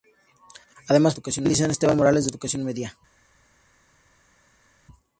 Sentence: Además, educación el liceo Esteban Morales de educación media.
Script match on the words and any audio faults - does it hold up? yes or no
yes